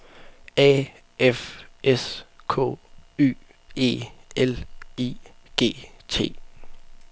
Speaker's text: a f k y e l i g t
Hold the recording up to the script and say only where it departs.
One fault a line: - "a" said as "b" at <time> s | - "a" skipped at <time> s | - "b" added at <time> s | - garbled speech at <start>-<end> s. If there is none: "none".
- "s" added at 1.8 s